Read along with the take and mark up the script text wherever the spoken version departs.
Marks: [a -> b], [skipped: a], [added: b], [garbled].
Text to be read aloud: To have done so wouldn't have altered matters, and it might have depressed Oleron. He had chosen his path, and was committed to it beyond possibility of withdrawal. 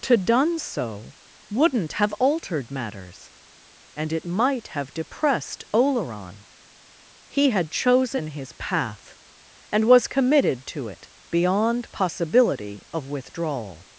To [skipped: have] done so wouldn't have altered matters, and it might have depressed Oleron. He had chosen his path, and was committed to it beyond possibility of withdrawal.